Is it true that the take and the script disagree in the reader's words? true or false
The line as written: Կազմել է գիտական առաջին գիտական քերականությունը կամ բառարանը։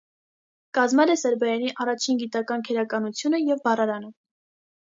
true